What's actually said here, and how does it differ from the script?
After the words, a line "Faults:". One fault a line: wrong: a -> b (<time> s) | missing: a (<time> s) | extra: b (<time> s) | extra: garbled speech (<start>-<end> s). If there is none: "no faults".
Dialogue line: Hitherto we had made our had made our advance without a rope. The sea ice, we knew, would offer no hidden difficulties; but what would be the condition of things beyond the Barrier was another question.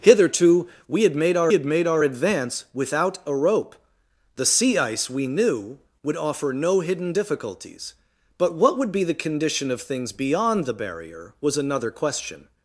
Hitherto we had made our had made our advance without a rope. The sea ice, we knew, would offer no hidden difficulties; but what would be the condition of things beyond the Barrier was another question.
Faults:
no faults